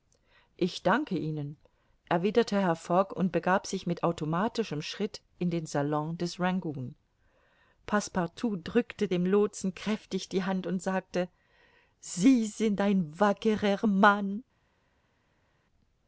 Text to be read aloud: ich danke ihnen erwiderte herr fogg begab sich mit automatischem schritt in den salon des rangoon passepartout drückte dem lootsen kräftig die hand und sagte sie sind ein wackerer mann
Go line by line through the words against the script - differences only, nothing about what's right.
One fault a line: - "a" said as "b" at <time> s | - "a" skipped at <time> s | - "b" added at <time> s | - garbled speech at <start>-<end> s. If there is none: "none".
- "und" added at 3.1 s